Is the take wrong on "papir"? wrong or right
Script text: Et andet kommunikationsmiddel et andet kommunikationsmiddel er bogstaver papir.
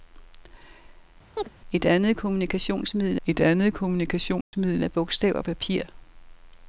right